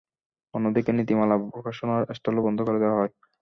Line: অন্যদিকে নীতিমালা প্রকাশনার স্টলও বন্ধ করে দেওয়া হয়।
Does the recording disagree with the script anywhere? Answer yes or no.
no